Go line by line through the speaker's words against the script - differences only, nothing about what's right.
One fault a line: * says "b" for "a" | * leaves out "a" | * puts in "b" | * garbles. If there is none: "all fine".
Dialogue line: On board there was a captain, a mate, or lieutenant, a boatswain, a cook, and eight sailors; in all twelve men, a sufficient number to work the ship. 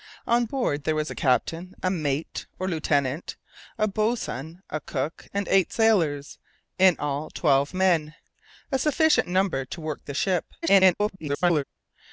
* garbles